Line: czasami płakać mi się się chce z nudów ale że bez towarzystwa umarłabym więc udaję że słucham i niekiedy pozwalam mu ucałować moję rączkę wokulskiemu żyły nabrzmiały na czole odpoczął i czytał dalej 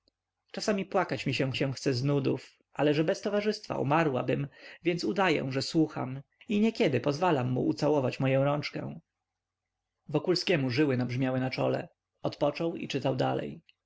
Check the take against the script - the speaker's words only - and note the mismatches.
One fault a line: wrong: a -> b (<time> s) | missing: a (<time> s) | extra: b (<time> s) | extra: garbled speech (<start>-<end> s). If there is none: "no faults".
no faults